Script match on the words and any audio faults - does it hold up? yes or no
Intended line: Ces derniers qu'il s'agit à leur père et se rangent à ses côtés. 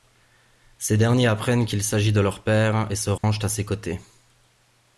no